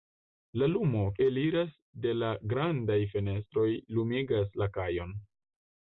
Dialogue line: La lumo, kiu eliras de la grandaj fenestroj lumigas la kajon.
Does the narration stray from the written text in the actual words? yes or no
yes